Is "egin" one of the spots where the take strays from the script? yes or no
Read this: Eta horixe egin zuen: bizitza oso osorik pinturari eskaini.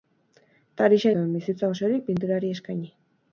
yes